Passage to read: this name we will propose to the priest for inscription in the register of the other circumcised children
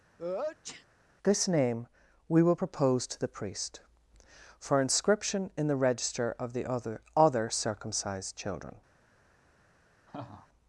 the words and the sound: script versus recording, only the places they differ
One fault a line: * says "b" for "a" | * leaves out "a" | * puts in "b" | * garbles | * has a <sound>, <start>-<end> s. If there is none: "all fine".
* has a sneeze, 0.2-0.9 s
* puts in "other"
* has a laugh, 10.1-10.5 s